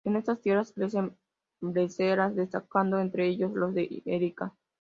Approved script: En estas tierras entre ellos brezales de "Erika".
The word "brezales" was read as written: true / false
false